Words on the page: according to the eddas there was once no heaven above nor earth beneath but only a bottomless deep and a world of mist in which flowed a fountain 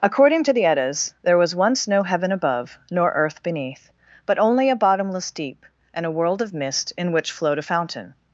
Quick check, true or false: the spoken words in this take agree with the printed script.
true